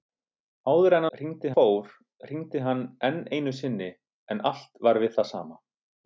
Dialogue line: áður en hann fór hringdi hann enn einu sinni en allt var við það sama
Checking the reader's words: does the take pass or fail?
fail